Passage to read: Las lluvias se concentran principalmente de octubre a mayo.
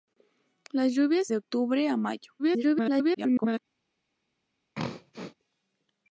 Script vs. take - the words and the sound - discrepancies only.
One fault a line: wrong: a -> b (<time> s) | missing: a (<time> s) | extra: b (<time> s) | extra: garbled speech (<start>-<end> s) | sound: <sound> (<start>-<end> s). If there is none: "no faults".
missing: se concentran principalmente (1.3 s)
extra: garbled speech (2.4-3.6 s)
sound: throat clearing (4.7-5.3 s)